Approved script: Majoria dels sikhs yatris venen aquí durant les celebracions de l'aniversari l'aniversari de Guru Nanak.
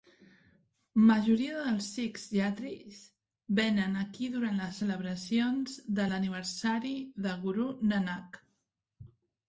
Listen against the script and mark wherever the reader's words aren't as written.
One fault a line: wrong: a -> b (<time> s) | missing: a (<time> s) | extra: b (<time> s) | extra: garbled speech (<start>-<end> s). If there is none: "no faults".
missing: l'aniversari (7.0 s)